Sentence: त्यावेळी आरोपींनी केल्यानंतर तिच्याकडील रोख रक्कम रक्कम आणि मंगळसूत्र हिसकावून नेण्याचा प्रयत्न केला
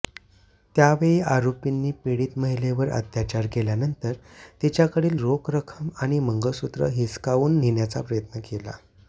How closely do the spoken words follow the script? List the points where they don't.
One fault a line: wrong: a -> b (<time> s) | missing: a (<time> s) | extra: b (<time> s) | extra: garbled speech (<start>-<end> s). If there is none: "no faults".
extra: पीडित महिलेवर अत्याचार (2.0 s)
missing: रक्कम (5.9 s)